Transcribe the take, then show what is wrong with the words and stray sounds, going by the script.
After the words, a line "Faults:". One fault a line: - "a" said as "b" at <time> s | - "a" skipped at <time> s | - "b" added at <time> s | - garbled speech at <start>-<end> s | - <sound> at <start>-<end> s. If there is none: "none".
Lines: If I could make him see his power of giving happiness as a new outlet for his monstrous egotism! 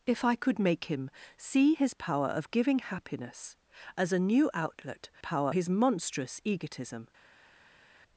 If I could make him see his power of giving happiness as a new outlet power his monstrous egotism!
Faults:
- "for" said as "power" at 5.2 s